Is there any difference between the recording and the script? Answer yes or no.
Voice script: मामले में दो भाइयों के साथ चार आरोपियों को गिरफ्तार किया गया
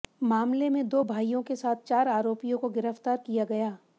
no